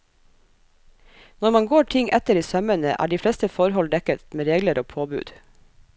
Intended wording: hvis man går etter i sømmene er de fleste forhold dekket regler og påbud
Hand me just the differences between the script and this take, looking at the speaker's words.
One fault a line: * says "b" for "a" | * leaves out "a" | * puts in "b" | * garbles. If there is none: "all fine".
* says "når" for "hvis"
* puts in "ting"
* puts in "med"